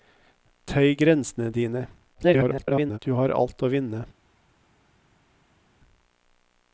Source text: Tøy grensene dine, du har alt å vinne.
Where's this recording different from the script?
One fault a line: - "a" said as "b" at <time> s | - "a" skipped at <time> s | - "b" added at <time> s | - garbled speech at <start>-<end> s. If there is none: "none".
- garbled speech at 2.1-3.0 s